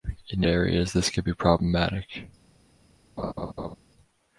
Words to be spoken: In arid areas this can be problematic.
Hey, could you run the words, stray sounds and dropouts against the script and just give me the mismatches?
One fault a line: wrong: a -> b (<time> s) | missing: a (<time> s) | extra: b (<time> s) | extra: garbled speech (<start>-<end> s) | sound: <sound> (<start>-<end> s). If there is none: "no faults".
missing: arid (0.4 s)
sound: laugh (3.2-3.8 s)